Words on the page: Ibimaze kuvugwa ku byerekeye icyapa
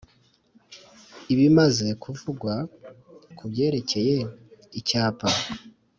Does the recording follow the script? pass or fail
pass